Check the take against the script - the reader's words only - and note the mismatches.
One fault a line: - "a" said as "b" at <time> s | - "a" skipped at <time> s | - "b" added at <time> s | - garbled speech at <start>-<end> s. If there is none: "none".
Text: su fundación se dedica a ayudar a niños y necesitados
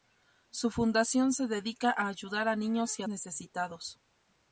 none